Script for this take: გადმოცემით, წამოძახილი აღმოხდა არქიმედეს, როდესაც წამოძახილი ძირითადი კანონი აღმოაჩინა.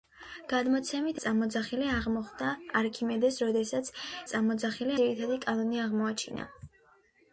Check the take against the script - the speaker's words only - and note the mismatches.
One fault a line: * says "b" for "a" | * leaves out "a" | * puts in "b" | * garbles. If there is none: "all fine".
all fine